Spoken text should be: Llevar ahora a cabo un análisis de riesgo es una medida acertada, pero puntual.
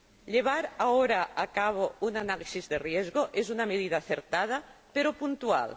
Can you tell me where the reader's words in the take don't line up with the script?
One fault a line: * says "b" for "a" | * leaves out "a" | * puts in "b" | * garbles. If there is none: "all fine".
all fine